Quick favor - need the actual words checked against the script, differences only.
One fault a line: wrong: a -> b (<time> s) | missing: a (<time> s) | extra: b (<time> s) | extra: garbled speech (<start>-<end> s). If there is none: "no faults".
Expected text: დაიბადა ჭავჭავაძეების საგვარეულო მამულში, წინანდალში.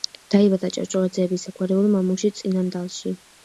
no faults